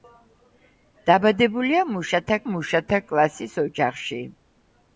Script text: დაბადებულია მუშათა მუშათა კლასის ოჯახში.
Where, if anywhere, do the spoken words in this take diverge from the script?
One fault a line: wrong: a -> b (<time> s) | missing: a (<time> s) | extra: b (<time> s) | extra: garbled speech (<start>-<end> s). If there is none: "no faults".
no faults